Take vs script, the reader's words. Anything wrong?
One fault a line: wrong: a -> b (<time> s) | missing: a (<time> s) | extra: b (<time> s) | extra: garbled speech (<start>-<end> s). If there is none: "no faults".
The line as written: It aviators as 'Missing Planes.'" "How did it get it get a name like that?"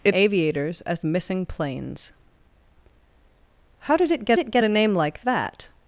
no faults